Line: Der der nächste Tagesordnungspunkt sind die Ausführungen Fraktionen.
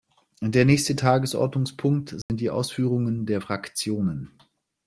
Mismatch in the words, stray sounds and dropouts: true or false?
true